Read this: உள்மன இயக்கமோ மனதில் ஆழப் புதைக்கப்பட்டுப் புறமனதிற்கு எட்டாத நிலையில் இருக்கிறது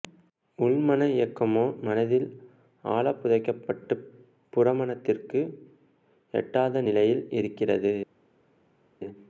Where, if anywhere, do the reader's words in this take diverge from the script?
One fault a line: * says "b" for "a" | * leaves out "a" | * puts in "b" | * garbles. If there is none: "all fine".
all fine